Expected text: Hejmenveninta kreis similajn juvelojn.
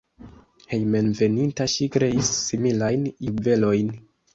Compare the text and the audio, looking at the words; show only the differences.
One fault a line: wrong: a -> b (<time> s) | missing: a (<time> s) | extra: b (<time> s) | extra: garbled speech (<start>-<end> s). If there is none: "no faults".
extra: ŝi (1.8 s)